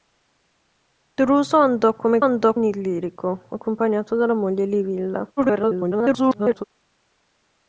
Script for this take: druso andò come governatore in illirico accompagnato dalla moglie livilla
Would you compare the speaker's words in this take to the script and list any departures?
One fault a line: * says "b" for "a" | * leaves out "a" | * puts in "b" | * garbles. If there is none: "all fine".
* says "andò" for "governatore"
* garbles